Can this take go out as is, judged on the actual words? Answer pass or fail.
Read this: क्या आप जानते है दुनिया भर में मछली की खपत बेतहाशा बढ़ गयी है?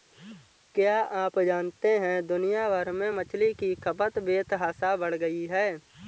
pass